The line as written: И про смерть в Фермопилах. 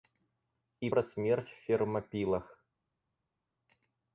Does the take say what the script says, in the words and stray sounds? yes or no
yes